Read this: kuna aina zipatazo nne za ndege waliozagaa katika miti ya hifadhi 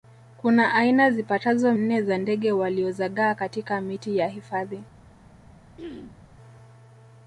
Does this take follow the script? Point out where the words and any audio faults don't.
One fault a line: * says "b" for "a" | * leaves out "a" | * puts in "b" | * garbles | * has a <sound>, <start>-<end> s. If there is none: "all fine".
* has a throat clearing, 5.8-6.2 s